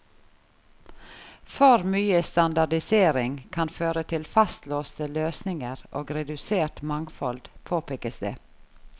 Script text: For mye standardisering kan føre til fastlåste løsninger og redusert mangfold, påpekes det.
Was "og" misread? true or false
false